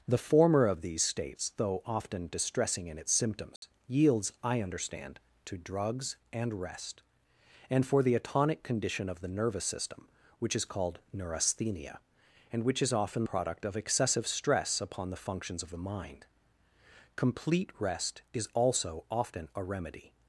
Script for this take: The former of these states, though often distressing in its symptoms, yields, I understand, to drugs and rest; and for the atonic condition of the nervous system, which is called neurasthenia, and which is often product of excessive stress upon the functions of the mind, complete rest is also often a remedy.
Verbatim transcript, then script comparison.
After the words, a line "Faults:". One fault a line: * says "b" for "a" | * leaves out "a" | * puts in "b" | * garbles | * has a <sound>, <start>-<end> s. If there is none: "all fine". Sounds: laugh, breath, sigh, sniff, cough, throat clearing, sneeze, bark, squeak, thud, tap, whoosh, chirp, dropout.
The former of these states, though often distressing in its symptoms, yields, I understand, to drugs and rest; and for the atonic condition of the nervous system, which is called neurasthenia, and which is often product of excessive stress upon the functions of the mind, complete rest is also often a remedy.
Faults:
* has a dropout, 3.6-3.6 s